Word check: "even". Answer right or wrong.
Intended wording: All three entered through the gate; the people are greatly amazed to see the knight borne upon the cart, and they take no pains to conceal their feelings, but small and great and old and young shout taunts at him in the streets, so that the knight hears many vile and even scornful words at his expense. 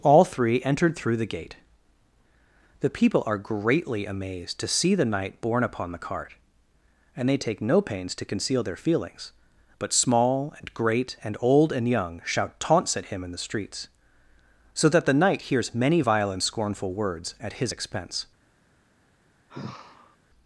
wrong